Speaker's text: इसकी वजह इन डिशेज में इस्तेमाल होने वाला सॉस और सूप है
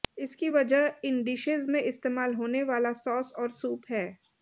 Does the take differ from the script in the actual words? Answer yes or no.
no